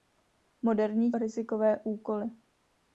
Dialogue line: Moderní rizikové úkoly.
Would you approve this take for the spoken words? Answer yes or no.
yes